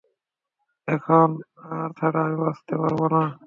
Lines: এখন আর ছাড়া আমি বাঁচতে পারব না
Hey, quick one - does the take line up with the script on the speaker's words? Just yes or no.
yes